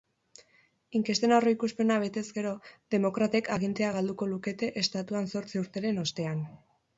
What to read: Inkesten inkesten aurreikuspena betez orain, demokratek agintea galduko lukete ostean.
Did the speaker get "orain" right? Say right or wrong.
wrong